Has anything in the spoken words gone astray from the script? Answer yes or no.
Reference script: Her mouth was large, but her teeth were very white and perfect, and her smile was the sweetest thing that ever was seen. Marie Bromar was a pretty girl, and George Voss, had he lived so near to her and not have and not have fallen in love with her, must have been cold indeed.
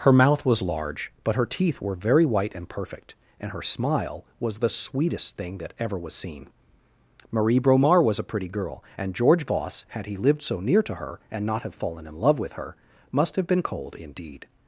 yes